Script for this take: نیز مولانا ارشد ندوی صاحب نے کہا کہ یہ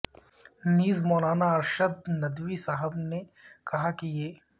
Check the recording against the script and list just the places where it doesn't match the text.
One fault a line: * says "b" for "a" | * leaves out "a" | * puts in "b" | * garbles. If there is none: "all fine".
all fine